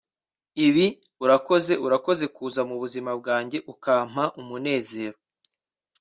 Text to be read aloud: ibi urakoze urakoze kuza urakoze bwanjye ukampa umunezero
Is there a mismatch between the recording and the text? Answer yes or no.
yes